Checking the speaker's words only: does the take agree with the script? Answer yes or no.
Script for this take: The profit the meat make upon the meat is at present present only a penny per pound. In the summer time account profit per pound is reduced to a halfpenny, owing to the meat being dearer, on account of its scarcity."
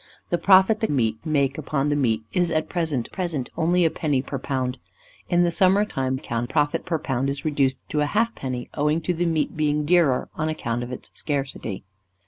yes